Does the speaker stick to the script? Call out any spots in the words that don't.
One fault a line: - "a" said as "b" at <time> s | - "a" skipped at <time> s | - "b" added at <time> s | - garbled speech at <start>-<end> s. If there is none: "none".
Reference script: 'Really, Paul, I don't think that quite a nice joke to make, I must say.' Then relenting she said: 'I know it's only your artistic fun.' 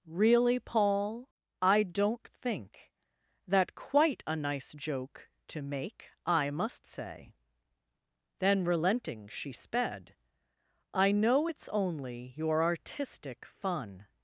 - "said" said as "sped" at 9.5 s